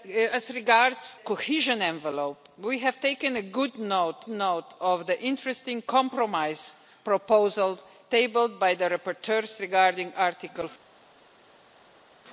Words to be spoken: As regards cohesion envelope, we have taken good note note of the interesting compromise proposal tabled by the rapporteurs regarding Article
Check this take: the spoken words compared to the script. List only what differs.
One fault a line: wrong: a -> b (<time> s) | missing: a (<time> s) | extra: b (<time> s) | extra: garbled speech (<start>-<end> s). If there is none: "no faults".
no faults